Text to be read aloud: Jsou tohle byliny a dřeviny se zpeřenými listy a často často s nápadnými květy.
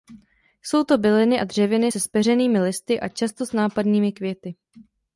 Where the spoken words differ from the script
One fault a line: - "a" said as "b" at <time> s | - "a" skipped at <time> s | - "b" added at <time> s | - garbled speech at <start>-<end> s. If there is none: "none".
- "tohle" said as "to" at 0.8 s
- "často" skipped at 3.4 s